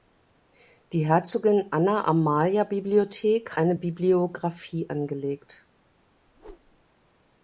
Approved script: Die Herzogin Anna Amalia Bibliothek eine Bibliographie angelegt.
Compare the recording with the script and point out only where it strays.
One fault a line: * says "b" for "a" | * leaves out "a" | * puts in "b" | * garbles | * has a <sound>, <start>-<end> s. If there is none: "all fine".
* has a whoosh, 6.3-6.8 s